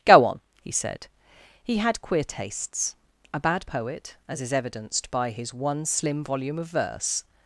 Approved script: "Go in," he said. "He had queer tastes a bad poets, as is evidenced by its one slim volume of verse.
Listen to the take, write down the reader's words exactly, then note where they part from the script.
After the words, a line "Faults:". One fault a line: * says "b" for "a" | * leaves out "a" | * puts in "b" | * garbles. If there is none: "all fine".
"Go on," he said. "He had queer tastes a bad poet, as is evidenced by his one slim volume of verse.
Faults:
* says "on" for "in"
* says "poet" for "poets"
* says "his" for "its"